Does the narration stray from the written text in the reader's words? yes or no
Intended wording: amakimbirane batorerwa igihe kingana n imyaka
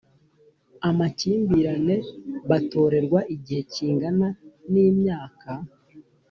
no